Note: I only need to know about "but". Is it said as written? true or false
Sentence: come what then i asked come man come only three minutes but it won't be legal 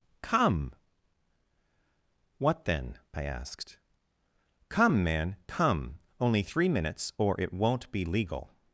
false